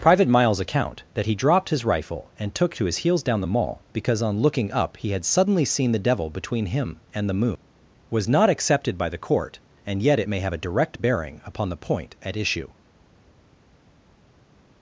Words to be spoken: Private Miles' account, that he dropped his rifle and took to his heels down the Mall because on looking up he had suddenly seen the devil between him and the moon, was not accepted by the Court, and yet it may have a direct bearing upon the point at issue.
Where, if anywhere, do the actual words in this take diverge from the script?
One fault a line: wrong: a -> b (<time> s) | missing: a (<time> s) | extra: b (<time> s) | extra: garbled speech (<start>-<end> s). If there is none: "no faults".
no faults